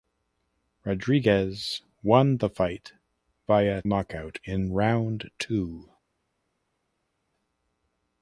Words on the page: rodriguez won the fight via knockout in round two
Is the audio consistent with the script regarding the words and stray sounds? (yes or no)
yes